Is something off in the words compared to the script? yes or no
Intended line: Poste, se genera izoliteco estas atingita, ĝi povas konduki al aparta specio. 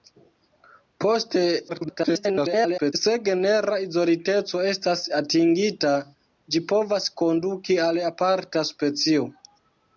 yes